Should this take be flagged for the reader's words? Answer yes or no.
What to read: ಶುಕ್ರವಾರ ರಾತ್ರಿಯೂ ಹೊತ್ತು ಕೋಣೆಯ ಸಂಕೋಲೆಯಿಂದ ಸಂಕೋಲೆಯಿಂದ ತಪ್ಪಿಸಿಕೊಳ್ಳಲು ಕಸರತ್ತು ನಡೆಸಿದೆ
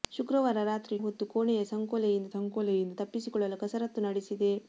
no